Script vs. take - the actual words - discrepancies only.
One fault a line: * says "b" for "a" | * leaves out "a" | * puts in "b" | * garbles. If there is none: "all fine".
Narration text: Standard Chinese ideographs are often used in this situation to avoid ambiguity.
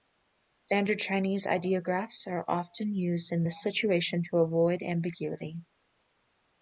all fine